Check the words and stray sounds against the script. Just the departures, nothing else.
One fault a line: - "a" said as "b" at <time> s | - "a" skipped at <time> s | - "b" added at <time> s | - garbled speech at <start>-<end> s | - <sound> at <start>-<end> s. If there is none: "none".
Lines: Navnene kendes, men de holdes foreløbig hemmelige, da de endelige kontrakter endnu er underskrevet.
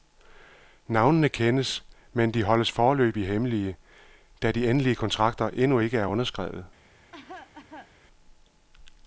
- "ikke" added at 5.8 s
- cough at 7.1-7.9 s